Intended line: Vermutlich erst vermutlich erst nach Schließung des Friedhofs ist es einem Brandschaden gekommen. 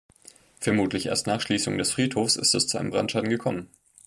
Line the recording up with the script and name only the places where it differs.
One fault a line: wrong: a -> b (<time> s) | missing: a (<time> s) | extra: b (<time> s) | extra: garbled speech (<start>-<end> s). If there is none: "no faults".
missing: vermutlich erst (1.3 s)
extra: zu (2.6 s)